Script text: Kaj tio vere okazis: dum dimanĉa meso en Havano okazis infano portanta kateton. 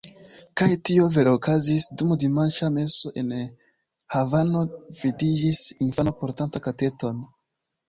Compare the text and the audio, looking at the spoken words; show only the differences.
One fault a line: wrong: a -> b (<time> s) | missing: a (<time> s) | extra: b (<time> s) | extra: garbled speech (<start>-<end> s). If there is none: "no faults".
wrong: okazis -> vidiĝis (5.0 s)